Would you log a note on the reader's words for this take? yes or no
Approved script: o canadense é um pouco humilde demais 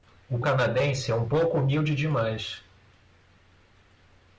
no